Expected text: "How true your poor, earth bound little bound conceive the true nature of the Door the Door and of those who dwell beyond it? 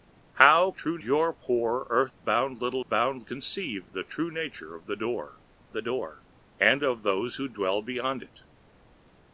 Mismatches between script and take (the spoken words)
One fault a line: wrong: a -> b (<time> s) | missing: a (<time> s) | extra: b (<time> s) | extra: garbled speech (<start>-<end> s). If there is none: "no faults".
no faults